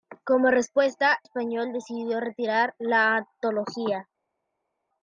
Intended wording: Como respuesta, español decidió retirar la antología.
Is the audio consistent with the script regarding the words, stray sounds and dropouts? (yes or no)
yes